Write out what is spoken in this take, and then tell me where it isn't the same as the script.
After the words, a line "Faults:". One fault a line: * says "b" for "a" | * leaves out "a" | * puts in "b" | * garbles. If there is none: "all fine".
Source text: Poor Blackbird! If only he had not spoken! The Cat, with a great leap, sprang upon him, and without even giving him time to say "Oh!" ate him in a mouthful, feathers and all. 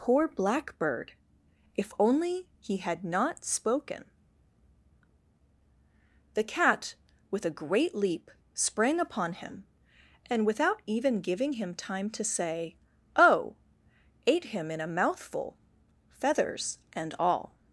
Poor Blackbird! If only he had not spoken! The Cat, with a great leap, sprang upon him, and without even giving him time to say "Oh!" ate him in a mouthful, feathers and all.
Faults:
all fine